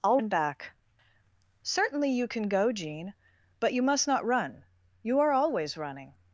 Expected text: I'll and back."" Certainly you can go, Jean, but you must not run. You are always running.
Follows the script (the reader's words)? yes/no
yes